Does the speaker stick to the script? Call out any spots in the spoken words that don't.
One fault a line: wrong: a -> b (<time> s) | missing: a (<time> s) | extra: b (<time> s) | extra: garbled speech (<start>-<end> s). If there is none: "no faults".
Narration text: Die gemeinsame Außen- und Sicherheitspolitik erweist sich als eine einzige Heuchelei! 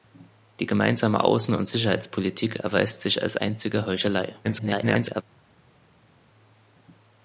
missing: eine (3.4 s)
extra: garbled speech (4.4-5.2 s)